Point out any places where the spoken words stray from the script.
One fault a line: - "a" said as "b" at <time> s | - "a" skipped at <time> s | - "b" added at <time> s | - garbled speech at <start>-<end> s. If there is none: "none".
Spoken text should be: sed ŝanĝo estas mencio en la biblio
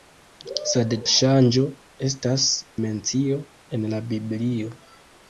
none